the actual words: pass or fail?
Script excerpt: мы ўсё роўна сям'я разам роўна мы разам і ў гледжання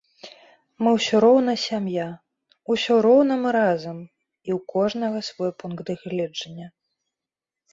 fail